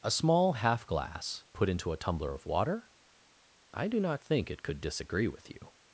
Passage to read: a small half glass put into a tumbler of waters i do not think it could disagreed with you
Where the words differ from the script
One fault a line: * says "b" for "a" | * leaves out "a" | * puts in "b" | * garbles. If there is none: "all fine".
* says "water" for "waters"
* says "disagree" for "disagreed"